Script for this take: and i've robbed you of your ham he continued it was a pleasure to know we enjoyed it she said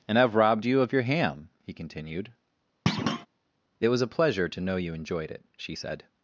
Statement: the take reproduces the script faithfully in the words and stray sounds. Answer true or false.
false